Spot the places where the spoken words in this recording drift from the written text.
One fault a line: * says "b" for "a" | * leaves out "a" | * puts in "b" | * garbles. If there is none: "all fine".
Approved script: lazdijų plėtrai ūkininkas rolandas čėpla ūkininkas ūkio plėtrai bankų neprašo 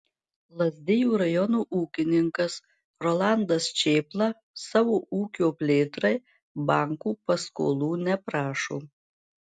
* says "rajono" for "plėtrai"
* says "savo" for "ūkininkas"
* puts in "paskolų"